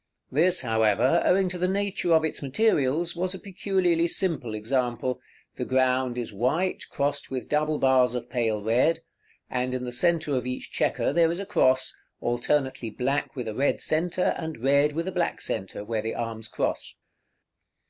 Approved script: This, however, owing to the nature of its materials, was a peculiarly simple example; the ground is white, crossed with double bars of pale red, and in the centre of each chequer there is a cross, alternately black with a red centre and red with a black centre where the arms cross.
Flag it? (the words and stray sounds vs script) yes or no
no